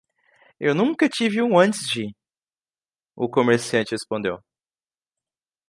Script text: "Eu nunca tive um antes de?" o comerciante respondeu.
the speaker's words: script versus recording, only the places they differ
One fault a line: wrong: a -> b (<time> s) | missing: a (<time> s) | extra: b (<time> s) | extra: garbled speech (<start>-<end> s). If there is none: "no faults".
no faults